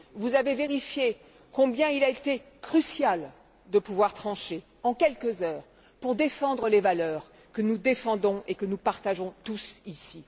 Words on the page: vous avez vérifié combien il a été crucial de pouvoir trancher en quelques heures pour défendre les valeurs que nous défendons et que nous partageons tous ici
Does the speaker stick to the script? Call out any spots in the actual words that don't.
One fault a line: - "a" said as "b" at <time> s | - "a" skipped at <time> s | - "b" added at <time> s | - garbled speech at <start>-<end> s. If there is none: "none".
none